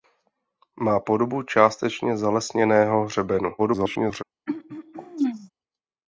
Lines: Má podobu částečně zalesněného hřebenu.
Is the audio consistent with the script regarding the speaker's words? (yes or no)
no